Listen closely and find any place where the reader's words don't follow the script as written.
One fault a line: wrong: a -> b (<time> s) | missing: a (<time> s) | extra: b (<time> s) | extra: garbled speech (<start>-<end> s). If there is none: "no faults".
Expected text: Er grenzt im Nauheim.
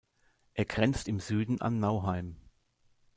extra: Süden an (1.2 s)